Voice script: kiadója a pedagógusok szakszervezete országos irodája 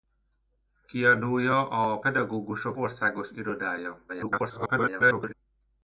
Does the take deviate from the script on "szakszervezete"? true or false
true